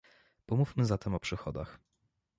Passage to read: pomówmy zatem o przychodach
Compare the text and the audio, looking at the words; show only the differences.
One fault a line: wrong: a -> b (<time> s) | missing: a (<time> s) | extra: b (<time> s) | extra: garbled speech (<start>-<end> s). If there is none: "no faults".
no faults